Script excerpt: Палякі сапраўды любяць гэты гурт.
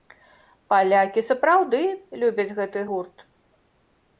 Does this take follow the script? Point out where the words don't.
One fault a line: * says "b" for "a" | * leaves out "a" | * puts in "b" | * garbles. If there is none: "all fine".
all fine